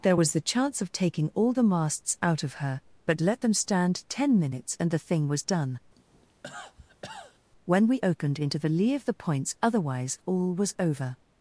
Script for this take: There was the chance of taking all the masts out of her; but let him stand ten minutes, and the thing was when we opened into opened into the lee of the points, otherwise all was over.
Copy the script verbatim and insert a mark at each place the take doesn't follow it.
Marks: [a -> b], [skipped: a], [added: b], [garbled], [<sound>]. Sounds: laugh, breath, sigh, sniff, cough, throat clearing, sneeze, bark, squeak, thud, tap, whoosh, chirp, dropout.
There was the chance of taking all the masts out of her; but let [him -> them] stand ten minutes, and the thing was [added: done] [cough] when we opened into [skipped: opened into] the lee of the points, otherwise all was over.